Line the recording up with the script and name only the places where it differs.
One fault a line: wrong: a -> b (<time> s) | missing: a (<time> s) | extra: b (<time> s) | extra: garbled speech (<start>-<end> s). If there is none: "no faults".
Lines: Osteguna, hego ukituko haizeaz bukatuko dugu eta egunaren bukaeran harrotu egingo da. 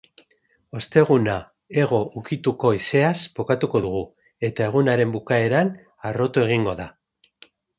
no faults